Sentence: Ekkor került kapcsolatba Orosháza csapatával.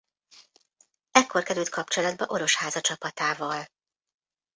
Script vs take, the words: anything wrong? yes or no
no